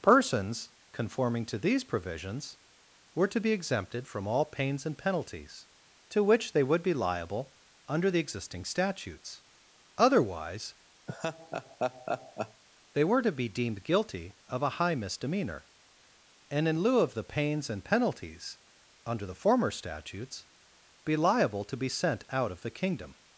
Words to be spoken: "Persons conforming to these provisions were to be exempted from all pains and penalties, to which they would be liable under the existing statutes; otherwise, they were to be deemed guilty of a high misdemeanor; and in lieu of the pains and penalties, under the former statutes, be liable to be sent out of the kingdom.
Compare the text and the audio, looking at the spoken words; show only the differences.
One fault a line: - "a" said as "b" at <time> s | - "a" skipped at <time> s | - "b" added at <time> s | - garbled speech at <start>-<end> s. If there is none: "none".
none